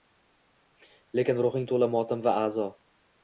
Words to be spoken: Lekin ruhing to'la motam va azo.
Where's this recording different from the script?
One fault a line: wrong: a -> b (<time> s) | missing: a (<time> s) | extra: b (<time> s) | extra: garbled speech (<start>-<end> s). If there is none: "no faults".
no faults